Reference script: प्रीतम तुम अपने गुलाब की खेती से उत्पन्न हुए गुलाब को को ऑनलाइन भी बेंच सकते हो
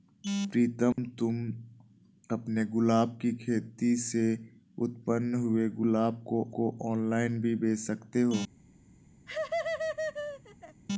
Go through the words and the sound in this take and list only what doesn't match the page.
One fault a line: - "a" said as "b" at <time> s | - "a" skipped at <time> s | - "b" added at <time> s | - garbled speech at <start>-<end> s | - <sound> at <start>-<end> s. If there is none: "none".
- dropout at 0.9-1.0 s
- laugh at 9.3-10.8 s